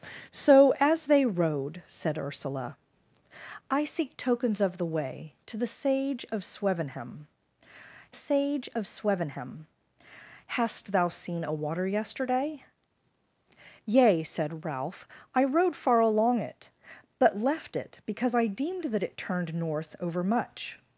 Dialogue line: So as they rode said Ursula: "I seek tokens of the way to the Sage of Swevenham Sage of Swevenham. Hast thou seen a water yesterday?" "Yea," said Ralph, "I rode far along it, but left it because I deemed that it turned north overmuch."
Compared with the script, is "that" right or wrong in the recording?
right